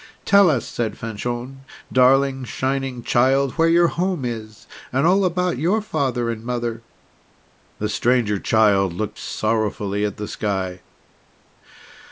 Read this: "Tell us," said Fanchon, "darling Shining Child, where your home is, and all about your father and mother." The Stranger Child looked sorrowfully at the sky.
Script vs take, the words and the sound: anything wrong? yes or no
no